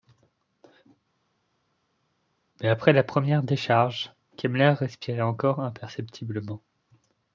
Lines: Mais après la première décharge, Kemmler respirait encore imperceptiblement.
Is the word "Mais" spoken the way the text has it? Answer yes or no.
yes